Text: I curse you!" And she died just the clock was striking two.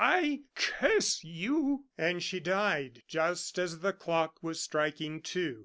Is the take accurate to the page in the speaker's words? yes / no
no